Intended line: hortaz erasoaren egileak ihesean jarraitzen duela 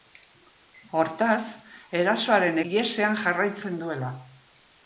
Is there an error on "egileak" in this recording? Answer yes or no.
yes